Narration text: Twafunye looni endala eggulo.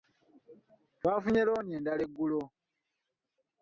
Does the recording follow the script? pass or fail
pass